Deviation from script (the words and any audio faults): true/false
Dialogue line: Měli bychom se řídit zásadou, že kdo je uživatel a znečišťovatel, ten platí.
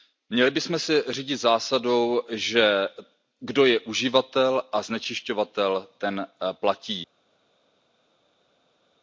false